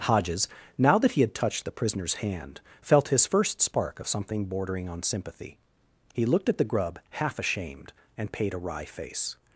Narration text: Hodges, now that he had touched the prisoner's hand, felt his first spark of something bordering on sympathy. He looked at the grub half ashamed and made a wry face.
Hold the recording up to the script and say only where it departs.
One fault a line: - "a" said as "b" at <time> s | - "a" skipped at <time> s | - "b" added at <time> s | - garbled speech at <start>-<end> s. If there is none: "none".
- "made" said as "paid" at 8.3 s